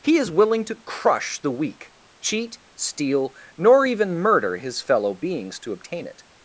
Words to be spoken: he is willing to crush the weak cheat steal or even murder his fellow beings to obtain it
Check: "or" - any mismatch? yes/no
yes